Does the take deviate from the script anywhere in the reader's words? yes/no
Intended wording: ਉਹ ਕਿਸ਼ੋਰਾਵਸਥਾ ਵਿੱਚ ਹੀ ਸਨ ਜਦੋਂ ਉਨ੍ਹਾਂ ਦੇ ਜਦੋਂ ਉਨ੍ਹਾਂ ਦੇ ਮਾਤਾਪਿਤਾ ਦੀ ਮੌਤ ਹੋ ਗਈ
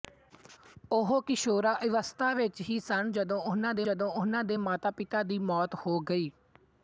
no